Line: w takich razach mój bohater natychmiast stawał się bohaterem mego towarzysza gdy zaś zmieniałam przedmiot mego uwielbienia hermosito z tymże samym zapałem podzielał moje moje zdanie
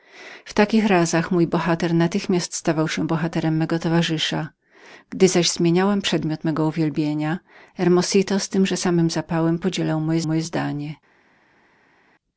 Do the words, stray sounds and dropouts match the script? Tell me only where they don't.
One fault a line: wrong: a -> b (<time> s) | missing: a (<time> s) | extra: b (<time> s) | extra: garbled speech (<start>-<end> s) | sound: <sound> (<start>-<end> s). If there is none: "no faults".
no faults